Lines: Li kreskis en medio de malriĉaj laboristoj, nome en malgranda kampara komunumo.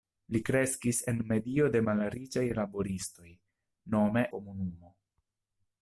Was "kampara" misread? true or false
true